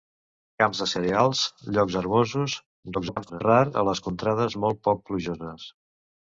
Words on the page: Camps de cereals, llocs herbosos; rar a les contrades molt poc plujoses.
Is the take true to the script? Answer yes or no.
no